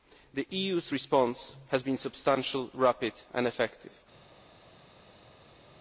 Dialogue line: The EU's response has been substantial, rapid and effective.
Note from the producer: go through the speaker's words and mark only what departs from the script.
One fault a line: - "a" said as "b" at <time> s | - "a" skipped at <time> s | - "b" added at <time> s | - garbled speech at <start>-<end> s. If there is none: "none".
none